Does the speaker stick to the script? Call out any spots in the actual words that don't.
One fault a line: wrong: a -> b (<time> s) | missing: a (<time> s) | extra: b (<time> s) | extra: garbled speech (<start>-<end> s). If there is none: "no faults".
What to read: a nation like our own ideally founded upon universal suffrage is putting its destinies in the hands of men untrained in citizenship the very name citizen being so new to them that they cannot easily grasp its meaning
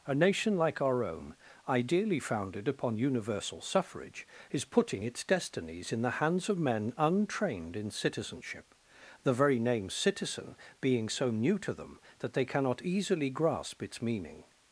no faults